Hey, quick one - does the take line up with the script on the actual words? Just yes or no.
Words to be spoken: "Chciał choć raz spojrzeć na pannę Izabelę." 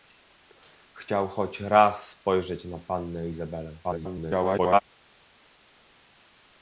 no